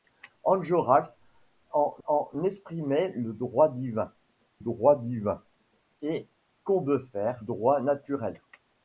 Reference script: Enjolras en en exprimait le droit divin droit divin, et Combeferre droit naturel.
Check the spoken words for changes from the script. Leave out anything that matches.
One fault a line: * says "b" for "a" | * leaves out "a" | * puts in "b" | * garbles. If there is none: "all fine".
all fine